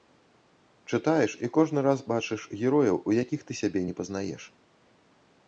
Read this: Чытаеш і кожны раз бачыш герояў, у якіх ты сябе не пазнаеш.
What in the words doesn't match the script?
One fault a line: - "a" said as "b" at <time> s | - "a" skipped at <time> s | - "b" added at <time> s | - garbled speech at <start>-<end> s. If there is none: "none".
none